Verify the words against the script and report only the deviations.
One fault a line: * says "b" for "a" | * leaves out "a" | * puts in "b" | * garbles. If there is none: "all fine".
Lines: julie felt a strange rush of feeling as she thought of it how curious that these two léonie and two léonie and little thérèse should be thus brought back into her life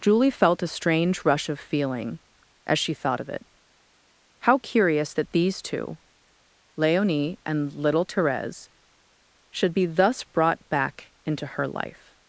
* leaves out "two léonie and"